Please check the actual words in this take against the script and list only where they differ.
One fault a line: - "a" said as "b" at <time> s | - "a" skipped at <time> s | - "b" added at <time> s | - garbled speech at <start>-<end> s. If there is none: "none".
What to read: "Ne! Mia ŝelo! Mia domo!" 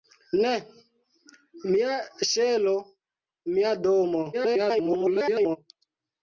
- garbled speech at 4.3-5.6 s